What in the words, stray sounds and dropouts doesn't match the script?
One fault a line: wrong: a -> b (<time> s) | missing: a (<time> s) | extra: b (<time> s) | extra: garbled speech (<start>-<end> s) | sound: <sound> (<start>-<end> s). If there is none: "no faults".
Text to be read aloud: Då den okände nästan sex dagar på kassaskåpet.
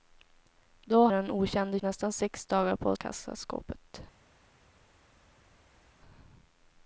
no faults